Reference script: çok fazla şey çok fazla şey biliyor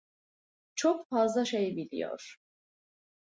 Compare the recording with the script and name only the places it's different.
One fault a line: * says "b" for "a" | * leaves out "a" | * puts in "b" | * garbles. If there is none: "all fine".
* leaves out "çok fazla şey"